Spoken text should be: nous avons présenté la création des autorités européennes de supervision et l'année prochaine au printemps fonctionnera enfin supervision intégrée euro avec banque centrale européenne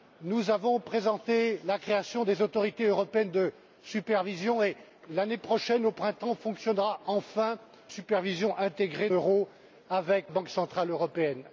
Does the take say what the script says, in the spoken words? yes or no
yes